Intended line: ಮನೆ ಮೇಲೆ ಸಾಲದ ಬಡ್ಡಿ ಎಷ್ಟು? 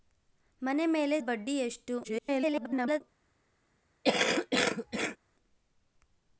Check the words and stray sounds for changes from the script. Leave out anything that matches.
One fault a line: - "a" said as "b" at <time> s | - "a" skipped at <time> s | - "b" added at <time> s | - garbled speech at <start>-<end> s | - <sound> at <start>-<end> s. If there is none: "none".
- "ಸಾಲದ" skipped at 1.2 s
- garbled speech at 2.0-3.0 s
- cough at 4.0-5.2 s